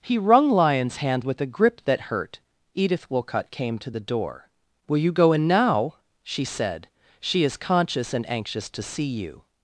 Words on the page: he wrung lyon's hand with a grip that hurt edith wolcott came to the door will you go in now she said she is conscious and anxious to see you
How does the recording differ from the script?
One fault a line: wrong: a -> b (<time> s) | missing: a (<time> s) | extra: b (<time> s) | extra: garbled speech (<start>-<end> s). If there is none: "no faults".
no faults